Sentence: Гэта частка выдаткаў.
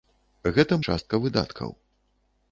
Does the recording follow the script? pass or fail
pass